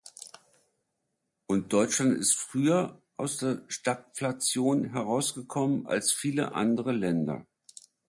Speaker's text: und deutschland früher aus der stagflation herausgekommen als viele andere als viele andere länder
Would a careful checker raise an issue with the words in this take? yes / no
yes